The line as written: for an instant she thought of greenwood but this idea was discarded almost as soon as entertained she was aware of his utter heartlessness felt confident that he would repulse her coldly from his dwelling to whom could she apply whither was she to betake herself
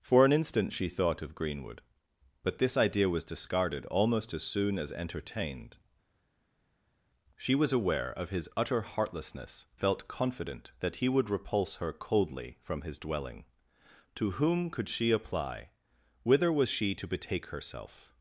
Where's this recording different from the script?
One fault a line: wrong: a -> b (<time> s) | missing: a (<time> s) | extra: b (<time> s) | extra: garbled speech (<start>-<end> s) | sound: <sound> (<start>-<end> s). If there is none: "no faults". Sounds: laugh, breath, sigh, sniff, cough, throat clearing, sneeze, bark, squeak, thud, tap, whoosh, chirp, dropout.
no faults